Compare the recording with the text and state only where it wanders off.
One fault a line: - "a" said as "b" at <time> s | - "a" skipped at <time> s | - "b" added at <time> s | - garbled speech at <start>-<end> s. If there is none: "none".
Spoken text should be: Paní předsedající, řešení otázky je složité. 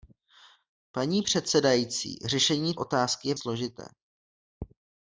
none